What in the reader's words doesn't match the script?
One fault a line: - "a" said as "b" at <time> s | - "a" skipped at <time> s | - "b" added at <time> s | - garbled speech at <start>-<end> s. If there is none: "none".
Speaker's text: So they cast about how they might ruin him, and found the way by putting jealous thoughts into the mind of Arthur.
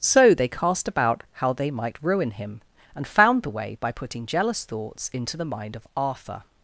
none